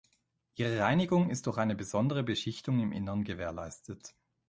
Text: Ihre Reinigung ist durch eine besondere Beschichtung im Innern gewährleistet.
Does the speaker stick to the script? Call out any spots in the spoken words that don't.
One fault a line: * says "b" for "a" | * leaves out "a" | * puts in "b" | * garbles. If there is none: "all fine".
all fine